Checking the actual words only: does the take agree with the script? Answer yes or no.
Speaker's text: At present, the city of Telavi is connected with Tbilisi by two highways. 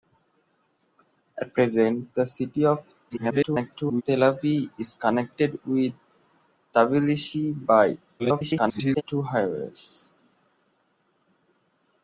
no